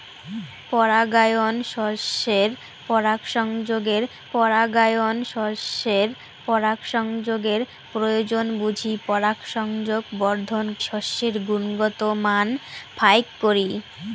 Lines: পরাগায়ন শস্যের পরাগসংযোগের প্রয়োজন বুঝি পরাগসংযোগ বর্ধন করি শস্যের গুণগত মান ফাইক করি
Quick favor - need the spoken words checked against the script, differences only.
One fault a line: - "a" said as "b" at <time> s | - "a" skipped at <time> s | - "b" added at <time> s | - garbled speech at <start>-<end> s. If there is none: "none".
- "পরাগায়ন শস্যের পরাগসংযোগের" added at 4.3 s
- "করি" skipped at 10.7 s